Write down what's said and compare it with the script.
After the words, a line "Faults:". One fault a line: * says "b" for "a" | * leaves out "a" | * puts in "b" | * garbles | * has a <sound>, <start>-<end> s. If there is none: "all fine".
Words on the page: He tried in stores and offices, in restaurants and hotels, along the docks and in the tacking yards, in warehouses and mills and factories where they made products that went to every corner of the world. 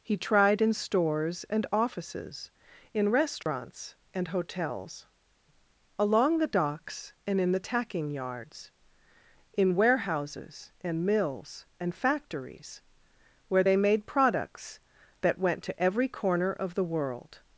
He tried in stores and offices, in restaurants and hotels, along the docks and in the tacking yards, in warehouses and mills and factories where they made products that went to every corner of the world.
Faults:
* has a dropout, 3.4-3.5 s